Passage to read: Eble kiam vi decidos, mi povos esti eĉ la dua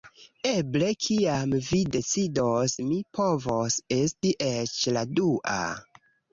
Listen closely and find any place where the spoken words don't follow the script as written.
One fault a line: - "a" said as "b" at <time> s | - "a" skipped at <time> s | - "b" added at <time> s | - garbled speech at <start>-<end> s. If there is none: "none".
none